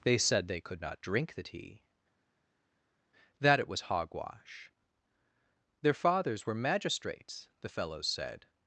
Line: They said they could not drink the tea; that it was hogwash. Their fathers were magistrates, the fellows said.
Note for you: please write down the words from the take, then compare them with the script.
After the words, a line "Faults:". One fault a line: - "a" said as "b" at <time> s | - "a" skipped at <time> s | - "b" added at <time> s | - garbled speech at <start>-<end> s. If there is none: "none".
They said they could not drink the tea; that it was hogwash. Their fathers were magistrates, the fellows said.
Faults:
none